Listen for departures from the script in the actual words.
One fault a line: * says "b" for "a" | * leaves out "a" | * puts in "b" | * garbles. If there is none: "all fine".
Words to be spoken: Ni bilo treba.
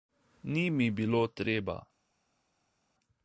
* puts in "mi"